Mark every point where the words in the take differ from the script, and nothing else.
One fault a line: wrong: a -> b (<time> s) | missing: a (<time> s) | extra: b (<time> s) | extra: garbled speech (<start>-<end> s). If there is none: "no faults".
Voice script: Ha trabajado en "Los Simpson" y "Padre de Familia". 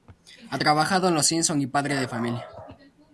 no faults